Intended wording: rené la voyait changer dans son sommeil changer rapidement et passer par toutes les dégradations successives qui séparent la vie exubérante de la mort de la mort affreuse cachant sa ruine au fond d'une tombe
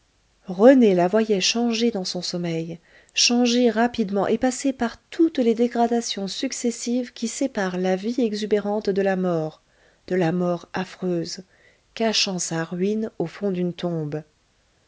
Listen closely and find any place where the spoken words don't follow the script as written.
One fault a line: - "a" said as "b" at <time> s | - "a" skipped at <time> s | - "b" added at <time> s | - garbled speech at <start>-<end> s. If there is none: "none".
none